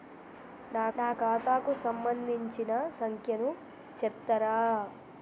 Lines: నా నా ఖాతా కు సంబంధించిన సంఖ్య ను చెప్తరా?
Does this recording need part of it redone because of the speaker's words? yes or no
no